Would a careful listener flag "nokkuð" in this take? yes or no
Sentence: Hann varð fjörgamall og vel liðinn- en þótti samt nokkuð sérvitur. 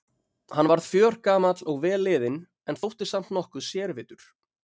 no